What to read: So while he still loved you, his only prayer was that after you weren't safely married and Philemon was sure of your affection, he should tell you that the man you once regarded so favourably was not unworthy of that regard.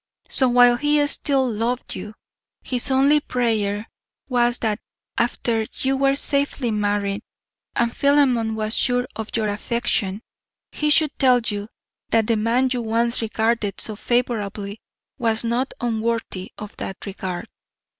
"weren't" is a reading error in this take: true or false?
true